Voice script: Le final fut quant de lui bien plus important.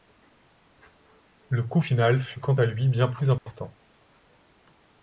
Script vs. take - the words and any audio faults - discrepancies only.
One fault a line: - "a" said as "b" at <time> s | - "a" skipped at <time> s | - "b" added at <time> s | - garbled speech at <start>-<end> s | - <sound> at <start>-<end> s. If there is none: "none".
- "coût" added at 1.6 s
- "de" said as "à" at 2.5 s
- dropout at 3.4-3.5 s